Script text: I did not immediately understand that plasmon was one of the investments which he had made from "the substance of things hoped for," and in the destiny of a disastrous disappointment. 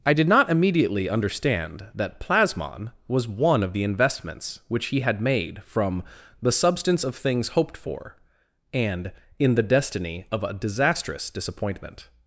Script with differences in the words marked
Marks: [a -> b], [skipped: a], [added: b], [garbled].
I did not immediately understand that plasmon was one of the investments which he had made from "the substance of things hoped for," and in the destiny of a disastrous disappointment.